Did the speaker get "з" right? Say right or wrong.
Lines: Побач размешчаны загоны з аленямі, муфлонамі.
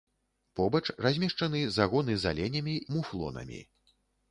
right